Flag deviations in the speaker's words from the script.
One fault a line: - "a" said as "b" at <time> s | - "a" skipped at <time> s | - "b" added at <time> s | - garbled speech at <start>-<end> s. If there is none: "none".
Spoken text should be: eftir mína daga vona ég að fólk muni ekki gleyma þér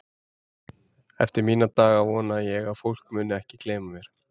- "þér" said as "mér" at 4.0 s